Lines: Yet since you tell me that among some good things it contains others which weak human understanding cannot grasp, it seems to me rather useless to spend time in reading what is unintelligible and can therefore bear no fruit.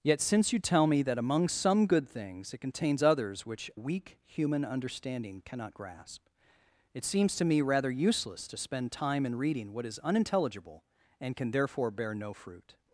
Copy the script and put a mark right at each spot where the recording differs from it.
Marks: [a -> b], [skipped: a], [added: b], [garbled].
Yet since you tell me that among some good things it contains others which weak human understanding cannot grasp, it seems to me rather useless to spend time in reading what is unintelligible and can therefore bear no fruit.